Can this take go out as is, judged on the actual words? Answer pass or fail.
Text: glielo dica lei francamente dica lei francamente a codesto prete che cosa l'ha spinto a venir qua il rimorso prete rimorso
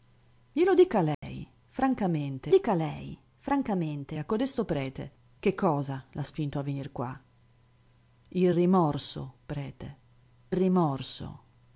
pass